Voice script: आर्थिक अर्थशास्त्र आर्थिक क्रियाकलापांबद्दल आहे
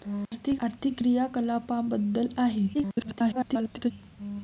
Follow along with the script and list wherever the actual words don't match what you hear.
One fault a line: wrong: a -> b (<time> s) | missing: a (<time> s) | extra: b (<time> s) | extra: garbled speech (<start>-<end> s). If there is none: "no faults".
missing: अर्थशास्त्र (0.6 s)
extra: garbled speech (2.7-3.9 s)